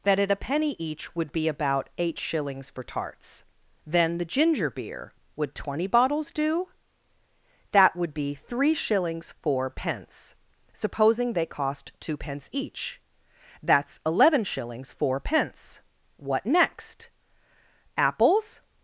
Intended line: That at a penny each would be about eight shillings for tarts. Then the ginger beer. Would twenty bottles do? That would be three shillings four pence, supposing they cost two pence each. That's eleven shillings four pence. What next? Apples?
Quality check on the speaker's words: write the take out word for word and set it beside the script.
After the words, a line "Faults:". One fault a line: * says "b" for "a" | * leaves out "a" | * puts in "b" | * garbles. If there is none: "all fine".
That at a penny each would be about eight shillings for tarts. Then the ginger beer. Would twenty bottles do? That would be three shillings four pence, supposing they cost two pence each. That's eleven shillings four pence. What next? Apples?
Faults:
all fine